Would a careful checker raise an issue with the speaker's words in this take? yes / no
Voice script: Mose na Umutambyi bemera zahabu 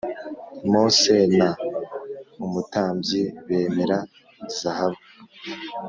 no